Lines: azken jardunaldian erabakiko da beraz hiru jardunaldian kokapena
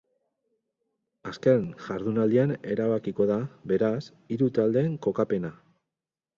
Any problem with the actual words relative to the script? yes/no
yes